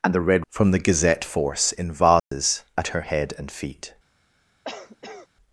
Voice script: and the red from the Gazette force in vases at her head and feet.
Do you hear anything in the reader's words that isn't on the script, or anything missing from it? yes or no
no